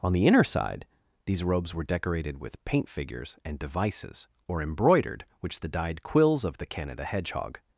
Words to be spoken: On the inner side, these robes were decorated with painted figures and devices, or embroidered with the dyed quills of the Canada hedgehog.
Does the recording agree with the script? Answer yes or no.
no